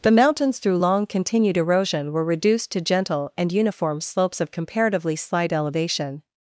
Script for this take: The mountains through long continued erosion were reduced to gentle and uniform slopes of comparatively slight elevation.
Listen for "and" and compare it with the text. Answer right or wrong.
right